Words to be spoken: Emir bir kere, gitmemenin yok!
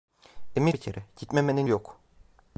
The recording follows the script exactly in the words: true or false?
true